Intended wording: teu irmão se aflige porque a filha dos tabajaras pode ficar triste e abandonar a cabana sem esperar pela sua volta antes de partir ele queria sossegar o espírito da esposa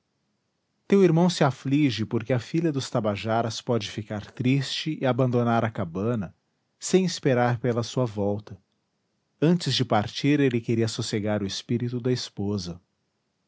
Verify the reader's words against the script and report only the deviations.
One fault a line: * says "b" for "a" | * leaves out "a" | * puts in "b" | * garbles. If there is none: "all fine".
all fine